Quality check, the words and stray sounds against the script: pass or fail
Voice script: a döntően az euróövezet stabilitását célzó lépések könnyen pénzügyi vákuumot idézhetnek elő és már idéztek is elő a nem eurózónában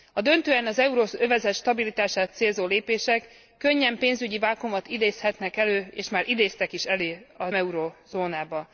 fail